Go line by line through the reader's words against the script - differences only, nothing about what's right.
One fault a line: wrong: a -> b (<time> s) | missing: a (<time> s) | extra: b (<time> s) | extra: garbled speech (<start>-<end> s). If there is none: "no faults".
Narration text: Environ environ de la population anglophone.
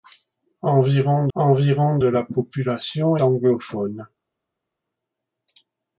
no faults